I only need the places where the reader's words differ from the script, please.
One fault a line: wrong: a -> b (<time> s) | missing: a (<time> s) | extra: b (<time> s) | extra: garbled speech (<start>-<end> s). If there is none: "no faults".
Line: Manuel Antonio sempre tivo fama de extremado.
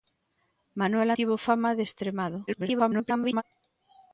missing: Antonio sempre (1.1 s)
extra: garbled speech (2.5-3.4 s)